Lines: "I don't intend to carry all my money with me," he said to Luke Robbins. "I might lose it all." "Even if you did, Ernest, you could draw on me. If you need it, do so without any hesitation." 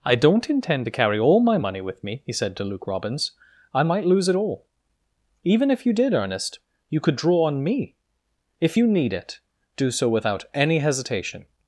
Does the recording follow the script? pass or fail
pass